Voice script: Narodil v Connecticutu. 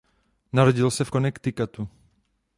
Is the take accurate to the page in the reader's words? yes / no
no